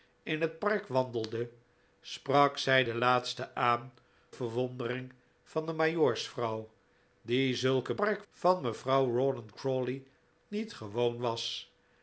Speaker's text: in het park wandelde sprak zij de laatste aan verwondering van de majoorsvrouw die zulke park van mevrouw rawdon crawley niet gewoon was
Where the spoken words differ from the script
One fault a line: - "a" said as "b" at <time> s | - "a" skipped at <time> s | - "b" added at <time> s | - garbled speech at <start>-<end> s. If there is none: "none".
none